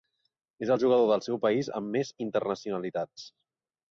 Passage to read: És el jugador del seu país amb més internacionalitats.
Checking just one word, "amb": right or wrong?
right